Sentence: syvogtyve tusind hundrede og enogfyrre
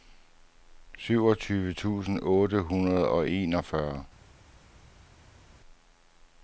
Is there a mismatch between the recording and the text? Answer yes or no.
yes